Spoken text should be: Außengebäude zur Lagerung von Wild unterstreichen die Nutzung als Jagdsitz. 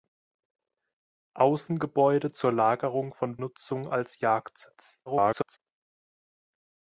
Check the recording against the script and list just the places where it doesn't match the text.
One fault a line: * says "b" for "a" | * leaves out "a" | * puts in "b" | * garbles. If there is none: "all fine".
* leaves out "Wild unterstreichen die"
* garbles